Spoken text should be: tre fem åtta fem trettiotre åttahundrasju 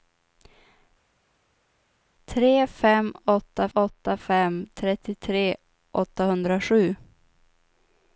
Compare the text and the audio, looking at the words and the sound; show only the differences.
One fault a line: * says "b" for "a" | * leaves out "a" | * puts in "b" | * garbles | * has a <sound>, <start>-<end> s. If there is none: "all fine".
* puts in "åtta"